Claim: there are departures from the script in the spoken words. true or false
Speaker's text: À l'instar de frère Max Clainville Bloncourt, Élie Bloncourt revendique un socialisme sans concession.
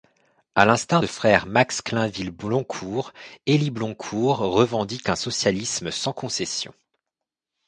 false